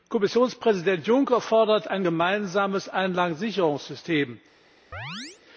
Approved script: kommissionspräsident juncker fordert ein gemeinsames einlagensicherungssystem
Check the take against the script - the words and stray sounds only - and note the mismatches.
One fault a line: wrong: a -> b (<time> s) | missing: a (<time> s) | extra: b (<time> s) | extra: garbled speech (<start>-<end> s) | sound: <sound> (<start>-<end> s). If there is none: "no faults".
sound: chirp (4.9-5.4 s)